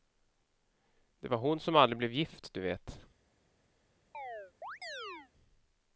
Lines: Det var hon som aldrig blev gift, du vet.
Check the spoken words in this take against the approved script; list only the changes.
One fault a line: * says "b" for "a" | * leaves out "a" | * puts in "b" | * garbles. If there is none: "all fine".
all fine